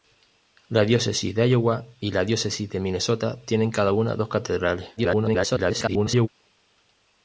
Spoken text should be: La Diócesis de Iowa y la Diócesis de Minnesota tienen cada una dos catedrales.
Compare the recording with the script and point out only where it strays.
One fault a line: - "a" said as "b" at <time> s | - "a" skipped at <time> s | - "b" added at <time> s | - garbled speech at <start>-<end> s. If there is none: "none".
- garbled speech at 5.0-6.3 s